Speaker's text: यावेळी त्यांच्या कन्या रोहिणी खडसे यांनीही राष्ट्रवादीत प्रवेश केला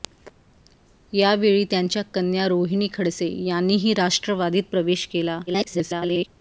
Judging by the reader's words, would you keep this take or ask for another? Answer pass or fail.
fail